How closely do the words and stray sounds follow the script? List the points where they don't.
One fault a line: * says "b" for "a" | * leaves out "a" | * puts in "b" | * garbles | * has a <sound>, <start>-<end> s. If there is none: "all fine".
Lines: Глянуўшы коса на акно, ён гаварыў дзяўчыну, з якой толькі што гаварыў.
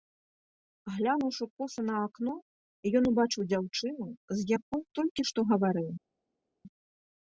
* says "убачыў" for "гаварыў"